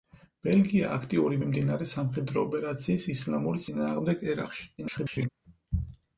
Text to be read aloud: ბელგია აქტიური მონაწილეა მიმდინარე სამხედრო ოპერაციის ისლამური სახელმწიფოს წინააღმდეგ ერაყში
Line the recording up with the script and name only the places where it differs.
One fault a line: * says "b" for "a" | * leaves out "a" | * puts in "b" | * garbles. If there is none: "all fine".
* leaves out "მონაწილეა"
* leaves out "სახელმწიფოს"
* garbles